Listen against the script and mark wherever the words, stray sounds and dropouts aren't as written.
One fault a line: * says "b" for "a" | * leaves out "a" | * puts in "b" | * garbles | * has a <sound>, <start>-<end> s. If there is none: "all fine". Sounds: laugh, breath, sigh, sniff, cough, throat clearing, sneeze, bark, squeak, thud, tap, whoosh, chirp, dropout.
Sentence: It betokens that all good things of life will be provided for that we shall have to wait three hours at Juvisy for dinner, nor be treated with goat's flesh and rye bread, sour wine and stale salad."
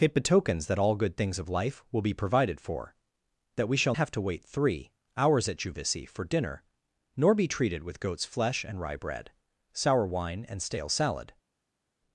all fine